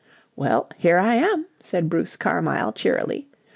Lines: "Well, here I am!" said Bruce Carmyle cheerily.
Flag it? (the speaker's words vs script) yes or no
no